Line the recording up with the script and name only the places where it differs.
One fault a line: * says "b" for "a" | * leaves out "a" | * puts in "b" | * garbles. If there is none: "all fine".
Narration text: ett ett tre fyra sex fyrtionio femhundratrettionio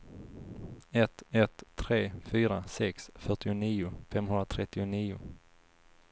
all fine